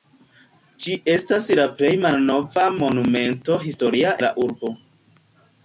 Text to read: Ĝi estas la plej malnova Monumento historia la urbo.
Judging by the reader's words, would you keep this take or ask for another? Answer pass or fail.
pass